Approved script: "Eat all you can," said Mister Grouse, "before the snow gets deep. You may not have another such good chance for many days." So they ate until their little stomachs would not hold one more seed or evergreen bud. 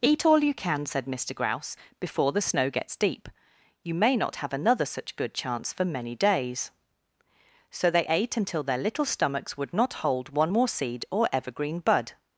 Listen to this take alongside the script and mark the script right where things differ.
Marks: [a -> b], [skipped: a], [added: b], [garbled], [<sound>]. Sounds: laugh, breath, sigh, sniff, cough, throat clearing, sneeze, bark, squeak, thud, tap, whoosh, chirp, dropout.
"Eat all you can," said Mister Grouse, "before the snow gets deep. You may not have another such good chance for many days." So they ate until their little stomachs would not hold one more seed or evergreen bud.